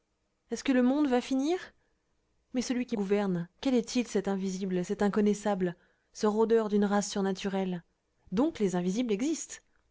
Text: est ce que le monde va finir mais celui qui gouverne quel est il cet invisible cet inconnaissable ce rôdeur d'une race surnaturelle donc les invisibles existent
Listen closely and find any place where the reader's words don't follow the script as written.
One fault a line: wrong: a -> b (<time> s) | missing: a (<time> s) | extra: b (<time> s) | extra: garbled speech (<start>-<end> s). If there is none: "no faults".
no faults